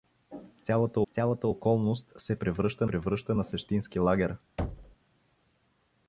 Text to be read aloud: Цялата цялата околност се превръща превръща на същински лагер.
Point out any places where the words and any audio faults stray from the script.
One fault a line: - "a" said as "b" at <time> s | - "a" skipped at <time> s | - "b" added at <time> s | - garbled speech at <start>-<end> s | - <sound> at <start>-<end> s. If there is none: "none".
- thud at 4.6-5.0 s